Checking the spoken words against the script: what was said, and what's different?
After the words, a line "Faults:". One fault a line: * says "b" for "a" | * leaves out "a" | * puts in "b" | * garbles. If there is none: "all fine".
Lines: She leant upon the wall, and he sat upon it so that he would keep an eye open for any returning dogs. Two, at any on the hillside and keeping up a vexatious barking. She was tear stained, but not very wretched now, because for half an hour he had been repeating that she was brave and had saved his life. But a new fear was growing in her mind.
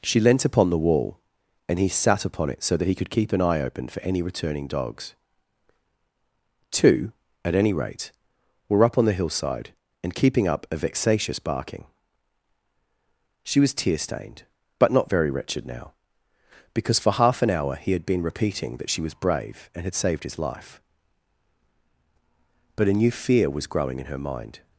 She leant upon the wall, and he sat upon it so that he could keep an eye open for any returning dogs. Two, at any rate, were up on the hillside and keeping up a vexatious barking. She was tear stained, but not very wretched now, because for half an hour he had been repeating that she was brave and had saved his life. But a new fear was growing in her mind.
Faults:
* says "could" for "would"
* puts in "rate were up"